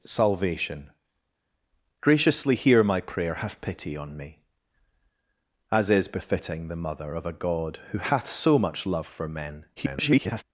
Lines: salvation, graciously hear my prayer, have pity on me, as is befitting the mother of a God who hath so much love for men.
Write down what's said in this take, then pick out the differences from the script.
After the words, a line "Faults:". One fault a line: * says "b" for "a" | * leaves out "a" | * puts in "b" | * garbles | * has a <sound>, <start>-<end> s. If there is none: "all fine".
salvation, graciously hear my prayer, have pity on me, as is befitting the mother of a God who hath so much love for men. [garbled]
Faults:
* garbles